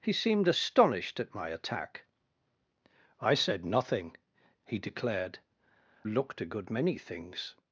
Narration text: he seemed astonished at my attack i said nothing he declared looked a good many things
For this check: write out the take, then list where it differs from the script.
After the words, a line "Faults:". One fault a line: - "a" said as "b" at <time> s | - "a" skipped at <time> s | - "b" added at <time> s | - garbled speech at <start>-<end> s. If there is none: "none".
he seemed astonished at my attack i said nothing he declared looked a good many things
Faults:
none